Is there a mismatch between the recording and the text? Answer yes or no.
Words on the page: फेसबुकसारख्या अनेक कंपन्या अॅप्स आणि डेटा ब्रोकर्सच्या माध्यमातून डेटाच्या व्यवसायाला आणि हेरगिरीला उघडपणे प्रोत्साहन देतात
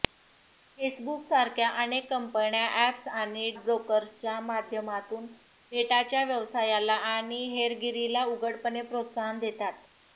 yes